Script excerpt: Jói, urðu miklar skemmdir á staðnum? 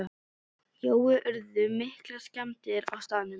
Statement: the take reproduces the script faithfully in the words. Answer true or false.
true